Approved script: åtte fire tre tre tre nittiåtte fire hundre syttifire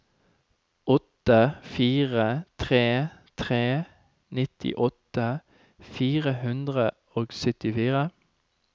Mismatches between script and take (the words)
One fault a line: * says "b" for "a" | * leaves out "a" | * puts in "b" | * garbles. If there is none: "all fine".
* leaves out "tre"
* puts in "og"